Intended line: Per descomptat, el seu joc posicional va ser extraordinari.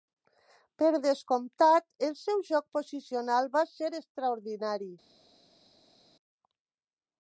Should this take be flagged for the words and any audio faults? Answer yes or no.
no